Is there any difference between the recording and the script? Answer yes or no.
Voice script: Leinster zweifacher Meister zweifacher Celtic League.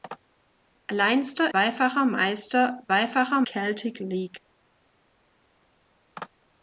no